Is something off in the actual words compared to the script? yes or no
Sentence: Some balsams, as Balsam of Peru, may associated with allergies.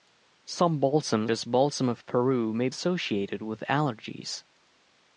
no